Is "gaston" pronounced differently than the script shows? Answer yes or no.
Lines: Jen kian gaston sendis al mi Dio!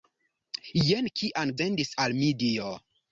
yes